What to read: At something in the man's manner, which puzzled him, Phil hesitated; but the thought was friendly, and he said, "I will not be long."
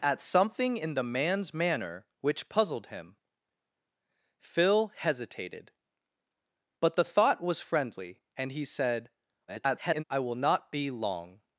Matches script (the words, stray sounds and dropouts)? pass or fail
fail